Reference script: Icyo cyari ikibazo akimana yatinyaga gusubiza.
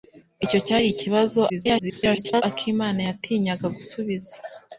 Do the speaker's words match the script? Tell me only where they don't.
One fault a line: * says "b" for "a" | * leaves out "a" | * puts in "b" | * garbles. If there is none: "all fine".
* garbles